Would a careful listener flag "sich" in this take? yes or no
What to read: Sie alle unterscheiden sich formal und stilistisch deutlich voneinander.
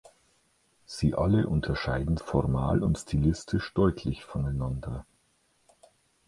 yes